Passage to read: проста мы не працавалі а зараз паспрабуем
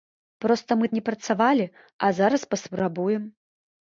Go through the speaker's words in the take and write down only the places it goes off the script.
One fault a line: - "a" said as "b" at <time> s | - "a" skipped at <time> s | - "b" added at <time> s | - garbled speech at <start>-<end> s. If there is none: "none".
none